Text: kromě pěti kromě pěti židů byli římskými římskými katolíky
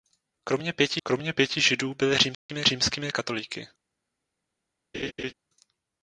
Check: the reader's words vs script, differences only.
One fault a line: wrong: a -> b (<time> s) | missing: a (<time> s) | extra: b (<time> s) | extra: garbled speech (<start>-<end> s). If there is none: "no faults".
no faults